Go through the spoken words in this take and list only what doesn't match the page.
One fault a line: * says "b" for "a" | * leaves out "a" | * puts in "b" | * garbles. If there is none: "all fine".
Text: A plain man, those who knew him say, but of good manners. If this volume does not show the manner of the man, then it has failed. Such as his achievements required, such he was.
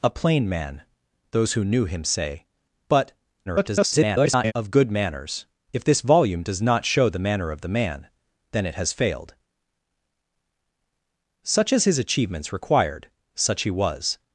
* garbles